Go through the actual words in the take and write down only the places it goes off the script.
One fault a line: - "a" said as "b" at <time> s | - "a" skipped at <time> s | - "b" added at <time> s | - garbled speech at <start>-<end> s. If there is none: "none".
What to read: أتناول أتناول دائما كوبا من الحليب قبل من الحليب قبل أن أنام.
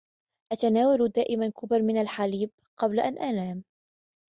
- "أتناول" skipped at 1.1 s
- "من الحليب قبل" skipped at 3.0 s